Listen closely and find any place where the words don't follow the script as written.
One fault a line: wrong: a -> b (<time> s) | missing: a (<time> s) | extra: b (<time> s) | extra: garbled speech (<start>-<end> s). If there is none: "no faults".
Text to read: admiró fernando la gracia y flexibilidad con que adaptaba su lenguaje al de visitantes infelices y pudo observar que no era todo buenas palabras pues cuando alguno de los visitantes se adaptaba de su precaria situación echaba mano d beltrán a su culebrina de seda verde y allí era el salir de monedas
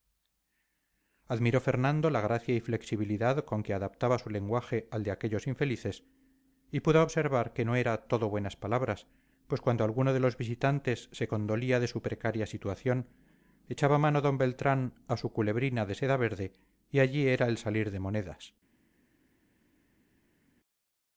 wrong: visitantes -> aquellos (5.1 s)
wrong: adaptaba -> condolía (11.3 s)